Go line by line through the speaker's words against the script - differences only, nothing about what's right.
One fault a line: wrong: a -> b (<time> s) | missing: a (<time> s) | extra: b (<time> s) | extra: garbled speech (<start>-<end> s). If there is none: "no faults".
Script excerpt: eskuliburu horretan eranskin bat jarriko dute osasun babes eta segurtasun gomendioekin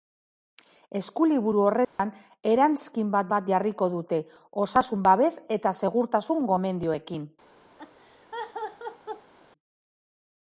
extra: bat (3.3 s)